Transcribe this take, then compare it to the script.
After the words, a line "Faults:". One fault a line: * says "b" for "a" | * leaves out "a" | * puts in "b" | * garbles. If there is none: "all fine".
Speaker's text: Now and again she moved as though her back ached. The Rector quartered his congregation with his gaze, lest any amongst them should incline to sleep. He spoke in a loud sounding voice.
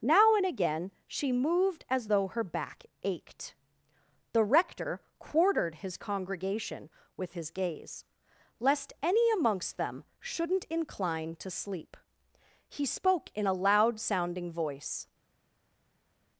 Now and again she moved as though her back ached. The Rector quartered his congregation with his gaze, lest any amongst them shouldn't incline to sleep. He spoke in a loud sounding voice.
Faults:
* says "shouldn't" for "should"